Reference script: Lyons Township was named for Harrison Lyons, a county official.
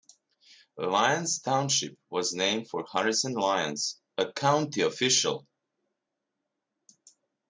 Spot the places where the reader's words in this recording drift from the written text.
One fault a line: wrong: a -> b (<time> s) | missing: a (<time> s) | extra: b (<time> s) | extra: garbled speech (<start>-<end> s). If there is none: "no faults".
no faults